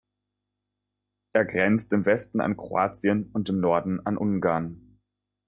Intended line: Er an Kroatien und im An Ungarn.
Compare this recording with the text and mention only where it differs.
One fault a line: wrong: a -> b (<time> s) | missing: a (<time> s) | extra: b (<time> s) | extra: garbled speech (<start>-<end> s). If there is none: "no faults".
extra: grenzt im Westen (1.4 s)
extra: Norden (3.6 s)